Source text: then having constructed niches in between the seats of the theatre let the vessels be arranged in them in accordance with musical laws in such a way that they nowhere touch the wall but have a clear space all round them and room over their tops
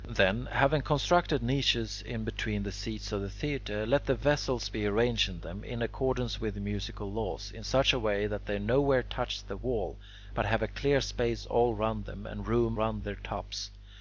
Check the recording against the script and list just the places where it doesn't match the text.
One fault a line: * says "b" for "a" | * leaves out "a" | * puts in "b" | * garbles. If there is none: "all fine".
* says "round" for "over"